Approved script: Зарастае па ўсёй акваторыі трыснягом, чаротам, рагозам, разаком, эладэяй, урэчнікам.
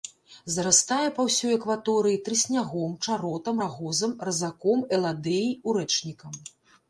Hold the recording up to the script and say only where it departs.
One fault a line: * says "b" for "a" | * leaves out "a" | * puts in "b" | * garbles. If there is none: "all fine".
all fine